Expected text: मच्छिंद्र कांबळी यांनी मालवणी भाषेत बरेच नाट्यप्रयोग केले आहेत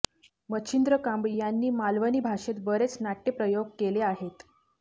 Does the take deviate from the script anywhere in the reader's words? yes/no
no